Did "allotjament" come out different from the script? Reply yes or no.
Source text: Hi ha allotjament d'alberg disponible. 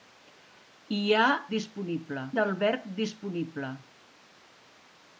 yes